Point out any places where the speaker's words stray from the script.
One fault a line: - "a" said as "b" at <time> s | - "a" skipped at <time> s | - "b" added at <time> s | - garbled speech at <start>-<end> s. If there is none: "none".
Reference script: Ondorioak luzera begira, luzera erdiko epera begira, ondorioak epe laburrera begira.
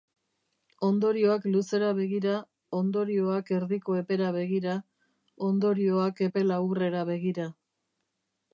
- "luzera" said as "ondorioak" at 2.8 s